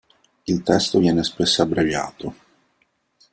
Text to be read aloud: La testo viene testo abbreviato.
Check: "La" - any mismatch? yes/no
yes